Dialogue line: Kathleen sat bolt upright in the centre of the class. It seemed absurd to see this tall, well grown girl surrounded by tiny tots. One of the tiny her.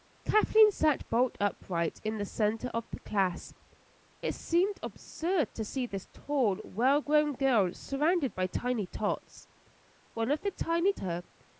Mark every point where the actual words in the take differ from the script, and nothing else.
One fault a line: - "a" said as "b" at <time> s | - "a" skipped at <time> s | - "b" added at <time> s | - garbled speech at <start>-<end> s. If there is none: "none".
none